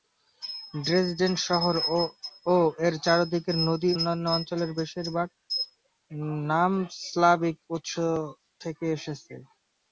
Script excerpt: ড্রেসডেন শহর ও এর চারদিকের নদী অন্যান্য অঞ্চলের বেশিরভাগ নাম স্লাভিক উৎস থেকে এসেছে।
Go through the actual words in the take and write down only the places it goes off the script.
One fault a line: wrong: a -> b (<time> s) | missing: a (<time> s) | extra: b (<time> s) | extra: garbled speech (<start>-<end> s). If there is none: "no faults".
no faults